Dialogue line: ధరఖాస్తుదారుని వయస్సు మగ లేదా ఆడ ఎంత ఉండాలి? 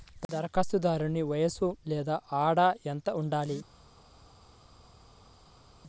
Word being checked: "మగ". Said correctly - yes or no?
no